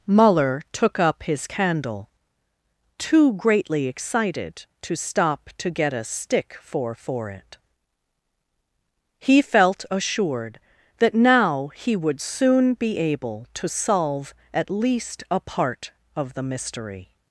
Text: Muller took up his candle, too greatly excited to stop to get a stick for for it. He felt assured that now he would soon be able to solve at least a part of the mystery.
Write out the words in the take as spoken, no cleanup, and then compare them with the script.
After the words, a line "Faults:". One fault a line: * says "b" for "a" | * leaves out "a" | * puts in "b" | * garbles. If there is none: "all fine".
Muller took up his candle, too greatly excited to stop to get a stick for for it. He felt assured that now he would soon be able to solve at least a part of the mystery.
Faults:
all fine